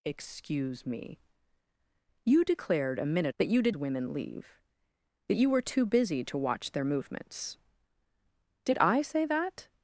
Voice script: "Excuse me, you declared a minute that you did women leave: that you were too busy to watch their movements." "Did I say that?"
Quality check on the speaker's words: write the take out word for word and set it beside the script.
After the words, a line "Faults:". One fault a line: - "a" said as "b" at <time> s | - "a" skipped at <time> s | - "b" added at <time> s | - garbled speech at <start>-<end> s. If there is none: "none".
"Excuse me, you declared a minute that you did women leave: that you were too busy to watch their movements." "Did I say that?"
Faults:
none